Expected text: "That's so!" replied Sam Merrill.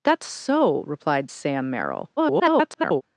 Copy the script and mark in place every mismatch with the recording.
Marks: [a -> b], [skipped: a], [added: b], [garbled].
"That's so!" replied Sam Merrill. [garbled]